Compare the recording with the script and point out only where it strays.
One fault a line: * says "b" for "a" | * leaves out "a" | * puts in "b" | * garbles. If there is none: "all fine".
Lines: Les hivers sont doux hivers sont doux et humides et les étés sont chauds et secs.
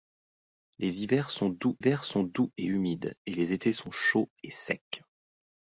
all fine